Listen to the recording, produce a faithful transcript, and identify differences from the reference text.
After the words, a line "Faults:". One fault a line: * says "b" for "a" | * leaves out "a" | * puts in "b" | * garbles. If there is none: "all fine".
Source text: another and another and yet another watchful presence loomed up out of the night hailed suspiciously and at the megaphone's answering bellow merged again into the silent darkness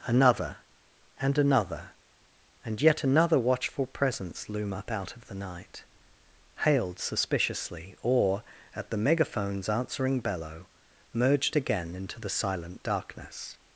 another and another and yet another watchful presence loom up out of the night hailed suspiciously or at the megaphone's answering bellow merged again into the silent darkness
Faults:
* says "loom" for "loomed"
* says "or" for "and"